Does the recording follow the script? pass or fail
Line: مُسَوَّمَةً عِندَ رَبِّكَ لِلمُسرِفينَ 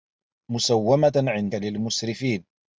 fail